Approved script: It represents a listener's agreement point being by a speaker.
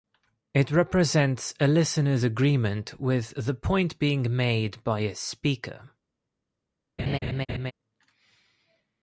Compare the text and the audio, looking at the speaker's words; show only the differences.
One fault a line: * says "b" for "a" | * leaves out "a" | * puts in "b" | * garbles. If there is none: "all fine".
* puts in "with the"
* puts in "made"